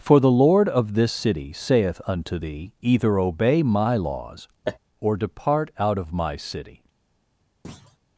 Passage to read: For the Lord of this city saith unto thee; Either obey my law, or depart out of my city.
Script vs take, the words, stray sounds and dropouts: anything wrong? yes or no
yes